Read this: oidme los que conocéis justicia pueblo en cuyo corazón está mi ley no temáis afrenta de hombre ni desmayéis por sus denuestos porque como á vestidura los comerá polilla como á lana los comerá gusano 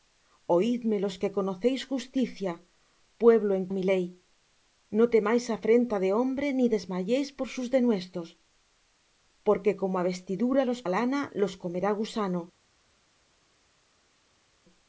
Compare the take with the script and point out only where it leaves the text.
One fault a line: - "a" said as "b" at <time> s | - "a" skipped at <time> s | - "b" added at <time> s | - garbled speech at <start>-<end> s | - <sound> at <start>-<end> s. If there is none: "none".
- "cuyo corazón está" skipped at 3.6 s
- "comerá polilla como" skipped at 10.8 s